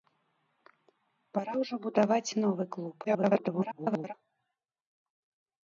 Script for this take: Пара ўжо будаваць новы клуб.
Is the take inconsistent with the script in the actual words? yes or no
yes